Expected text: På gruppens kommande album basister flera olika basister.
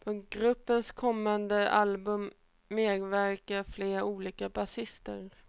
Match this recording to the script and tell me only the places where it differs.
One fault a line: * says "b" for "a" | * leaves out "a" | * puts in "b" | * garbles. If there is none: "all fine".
* says "medverkar" for "basister"